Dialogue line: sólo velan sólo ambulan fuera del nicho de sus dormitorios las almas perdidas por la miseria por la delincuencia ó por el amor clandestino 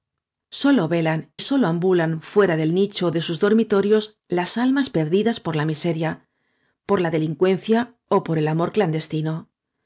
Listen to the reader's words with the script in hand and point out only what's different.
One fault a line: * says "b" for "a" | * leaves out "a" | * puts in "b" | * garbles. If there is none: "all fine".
all fine